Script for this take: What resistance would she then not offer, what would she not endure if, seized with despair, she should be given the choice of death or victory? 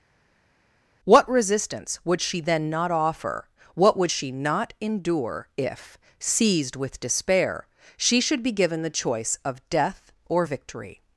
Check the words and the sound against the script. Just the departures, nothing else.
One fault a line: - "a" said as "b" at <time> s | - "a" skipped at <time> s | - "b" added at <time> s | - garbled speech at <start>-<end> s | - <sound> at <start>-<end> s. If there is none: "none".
none